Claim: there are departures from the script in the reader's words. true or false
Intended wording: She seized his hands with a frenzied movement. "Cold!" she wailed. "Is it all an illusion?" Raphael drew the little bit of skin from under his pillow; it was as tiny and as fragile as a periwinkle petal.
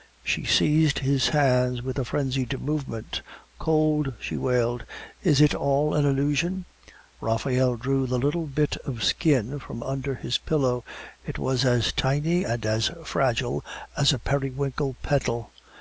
false